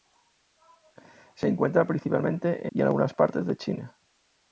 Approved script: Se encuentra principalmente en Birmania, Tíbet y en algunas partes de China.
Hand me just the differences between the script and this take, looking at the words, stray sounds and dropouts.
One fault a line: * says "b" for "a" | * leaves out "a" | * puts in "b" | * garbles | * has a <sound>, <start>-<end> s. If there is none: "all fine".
* leaves out "en Birmania Tíbet"